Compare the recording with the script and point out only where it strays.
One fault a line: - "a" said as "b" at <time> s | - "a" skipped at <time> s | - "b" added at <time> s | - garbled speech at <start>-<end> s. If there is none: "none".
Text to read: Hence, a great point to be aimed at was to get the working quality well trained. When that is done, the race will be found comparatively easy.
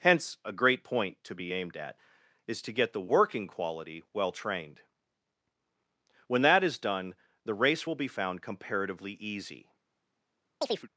- "was" said as "is" at 2.5 s